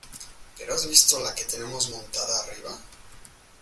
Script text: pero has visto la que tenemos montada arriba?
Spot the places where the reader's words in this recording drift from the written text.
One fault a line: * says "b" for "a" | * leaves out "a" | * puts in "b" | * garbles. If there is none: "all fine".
all fine